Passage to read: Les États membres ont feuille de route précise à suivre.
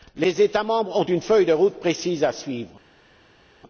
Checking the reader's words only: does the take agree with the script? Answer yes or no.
no